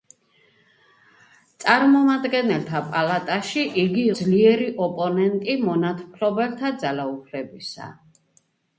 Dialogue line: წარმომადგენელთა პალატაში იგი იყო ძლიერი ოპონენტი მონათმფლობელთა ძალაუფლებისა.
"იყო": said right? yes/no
no